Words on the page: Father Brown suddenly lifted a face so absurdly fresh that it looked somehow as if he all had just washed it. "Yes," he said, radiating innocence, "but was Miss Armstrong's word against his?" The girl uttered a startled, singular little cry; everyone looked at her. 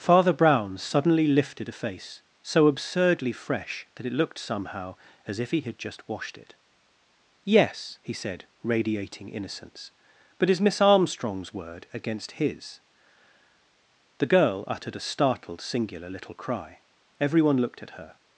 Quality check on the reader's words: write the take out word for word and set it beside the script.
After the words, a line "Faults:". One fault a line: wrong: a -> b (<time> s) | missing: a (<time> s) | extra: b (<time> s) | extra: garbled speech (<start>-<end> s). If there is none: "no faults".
Father Brown suddenly lifted a face so absurdly fresh that it looked somehow as if he had just washed it. "Yes," he said, radiating innocence, "but is Miss Armstrong's word against his?" The girl uttered a startled, singular little cry; everyone looked at her.
Faults:
missing: all (5.6 s)
wrong: was -> is (10.5 s)